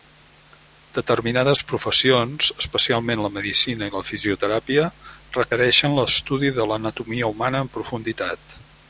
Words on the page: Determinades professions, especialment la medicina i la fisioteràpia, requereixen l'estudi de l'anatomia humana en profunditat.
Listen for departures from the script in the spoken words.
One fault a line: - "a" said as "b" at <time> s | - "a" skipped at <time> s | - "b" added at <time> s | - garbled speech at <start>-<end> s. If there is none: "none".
none